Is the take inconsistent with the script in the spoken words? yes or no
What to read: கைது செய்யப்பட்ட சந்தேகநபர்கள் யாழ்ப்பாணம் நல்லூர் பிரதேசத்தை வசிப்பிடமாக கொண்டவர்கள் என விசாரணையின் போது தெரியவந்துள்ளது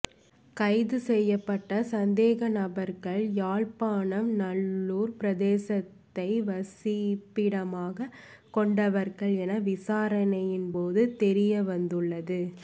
no